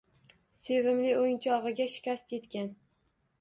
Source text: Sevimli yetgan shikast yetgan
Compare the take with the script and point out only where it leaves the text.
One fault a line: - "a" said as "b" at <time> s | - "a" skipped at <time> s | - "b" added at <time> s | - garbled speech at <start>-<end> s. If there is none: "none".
- "yetgan" said as "o‘yinchog‘iga" at 1.2 s